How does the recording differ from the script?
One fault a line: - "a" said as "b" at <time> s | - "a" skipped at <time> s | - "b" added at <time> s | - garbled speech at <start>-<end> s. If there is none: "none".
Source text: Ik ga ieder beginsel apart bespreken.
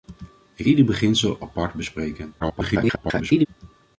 - "ga" skipped at 0.7 s
- garbled speech at 2.4-3.5 s